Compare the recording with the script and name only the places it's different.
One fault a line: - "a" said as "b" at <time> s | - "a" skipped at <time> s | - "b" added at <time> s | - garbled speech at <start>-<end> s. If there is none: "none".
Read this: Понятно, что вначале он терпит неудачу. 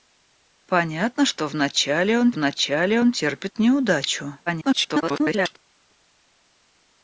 - "вначале он" added at 2.3 s
- garbled speech at 4.5-5.6 s